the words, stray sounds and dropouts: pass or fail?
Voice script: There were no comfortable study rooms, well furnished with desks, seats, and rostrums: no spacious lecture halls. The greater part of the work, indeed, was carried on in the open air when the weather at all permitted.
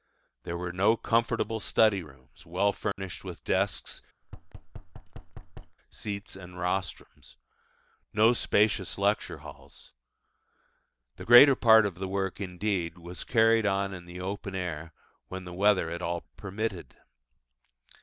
fail